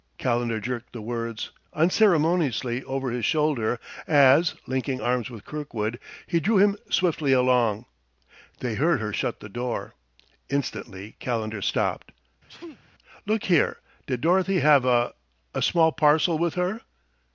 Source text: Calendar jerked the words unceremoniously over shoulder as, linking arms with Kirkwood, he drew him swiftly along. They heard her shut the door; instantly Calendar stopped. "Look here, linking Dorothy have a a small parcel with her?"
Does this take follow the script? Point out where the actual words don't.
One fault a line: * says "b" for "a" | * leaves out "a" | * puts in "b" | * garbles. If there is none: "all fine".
* puts in "his"
* says "did" for "linking"